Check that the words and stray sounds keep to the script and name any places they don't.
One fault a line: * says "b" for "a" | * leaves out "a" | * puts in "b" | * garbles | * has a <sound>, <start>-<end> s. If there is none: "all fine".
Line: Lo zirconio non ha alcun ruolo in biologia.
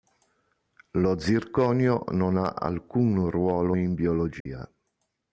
* has a dropout, 4.4-4.5 s